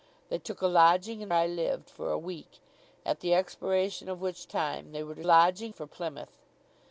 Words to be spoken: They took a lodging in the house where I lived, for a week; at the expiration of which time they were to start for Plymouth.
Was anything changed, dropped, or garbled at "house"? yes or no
yes